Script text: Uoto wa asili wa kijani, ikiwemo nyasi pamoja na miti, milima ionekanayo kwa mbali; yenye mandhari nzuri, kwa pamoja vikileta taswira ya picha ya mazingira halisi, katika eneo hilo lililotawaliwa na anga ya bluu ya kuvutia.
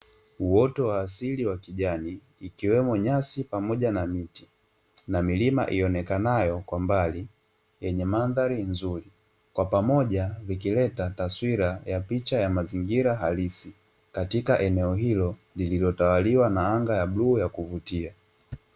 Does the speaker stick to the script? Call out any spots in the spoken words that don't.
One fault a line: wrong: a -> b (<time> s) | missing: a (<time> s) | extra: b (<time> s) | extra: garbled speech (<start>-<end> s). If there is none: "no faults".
extra: na (5.1 s)